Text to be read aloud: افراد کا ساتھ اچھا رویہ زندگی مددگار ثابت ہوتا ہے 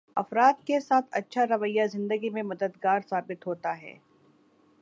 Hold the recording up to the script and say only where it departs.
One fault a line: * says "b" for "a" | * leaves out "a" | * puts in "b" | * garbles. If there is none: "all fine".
* says "کے" for "کا"
* puts in "میں"